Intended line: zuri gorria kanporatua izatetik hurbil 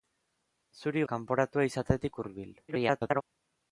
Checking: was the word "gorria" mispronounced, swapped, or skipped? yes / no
yes